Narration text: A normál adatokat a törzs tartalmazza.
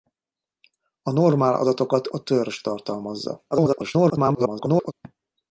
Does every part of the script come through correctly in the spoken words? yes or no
no